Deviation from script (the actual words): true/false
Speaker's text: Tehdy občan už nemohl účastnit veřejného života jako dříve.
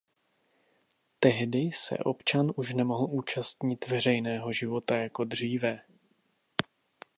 true